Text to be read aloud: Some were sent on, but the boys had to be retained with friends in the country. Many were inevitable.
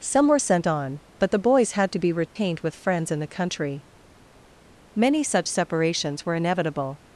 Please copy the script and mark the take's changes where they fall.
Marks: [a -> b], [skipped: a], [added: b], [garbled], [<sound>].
Some were sent on, but the boys had to be retained [dropout] with friends in the country. Many [added: such separations] were inevitable.